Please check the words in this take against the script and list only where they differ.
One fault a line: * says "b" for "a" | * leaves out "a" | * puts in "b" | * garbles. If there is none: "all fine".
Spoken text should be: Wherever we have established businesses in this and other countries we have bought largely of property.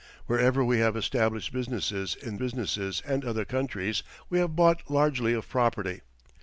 * says "businesses" for "this"